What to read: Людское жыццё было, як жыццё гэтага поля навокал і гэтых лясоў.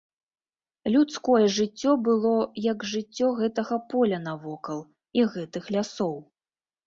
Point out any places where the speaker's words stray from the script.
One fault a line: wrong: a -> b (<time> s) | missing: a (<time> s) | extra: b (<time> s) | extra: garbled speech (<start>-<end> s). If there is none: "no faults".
no faults